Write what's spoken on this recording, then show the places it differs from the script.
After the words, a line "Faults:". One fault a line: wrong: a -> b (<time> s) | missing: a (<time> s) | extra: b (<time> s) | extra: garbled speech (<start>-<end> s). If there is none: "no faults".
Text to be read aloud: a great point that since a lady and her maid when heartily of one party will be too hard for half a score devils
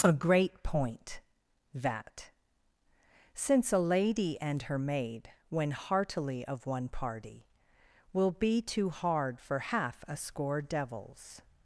a great point that since a lady and her maid when heartily of one party will be too hard for half a score devils
Faults:
no faults